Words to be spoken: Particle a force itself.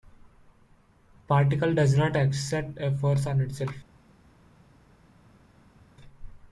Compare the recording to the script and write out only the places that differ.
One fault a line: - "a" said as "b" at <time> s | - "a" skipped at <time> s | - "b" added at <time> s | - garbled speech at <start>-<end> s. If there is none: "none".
- "does not exert" added at 1.8 s
- "on" added at 3.3 s